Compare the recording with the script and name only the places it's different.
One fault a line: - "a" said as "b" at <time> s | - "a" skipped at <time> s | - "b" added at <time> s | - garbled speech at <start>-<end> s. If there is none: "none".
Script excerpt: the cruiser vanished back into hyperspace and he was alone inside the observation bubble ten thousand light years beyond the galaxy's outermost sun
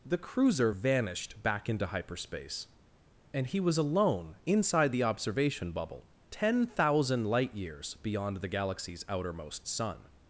none